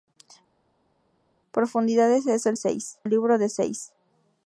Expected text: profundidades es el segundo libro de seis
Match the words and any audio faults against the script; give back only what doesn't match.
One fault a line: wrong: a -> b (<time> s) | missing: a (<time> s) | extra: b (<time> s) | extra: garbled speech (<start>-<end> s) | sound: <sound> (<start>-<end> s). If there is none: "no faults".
wrong: segundo -> seis (2.5 s)